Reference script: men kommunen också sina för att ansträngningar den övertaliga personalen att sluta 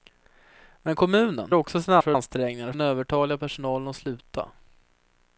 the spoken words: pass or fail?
pass